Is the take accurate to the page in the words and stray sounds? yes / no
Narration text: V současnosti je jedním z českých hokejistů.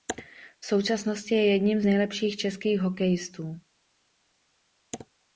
no